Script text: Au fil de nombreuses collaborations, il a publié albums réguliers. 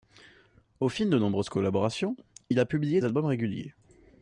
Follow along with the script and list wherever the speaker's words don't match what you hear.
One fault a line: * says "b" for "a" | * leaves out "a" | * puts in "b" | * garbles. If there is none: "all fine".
all fine